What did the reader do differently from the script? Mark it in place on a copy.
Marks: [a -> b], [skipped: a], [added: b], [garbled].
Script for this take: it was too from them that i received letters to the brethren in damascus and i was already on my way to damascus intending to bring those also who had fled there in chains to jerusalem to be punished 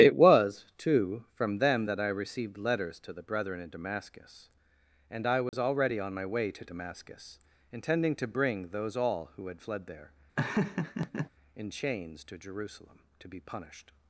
it was too from them that i received letters to the brethren in damascus and i was already on my way to damascus intending to bring those [also -> all] who had fled there in chains to jerusalem to be punished